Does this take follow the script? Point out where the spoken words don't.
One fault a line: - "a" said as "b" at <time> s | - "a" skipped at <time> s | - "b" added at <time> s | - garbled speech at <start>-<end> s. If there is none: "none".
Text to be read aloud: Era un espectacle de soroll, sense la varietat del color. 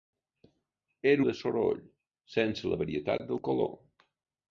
- "un espectacle" skipped at 1.2 s